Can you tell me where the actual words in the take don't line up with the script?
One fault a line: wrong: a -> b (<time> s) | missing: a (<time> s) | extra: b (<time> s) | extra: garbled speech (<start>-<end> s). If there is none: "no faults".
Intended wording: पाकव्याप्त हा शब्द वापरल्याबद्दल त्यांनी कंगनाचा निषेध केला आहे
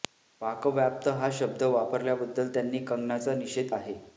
missing: केला (3.7 s)